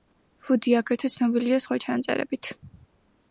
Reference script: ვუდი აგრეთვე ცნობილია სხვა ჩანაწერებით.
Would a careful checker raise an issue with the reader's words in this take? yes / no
no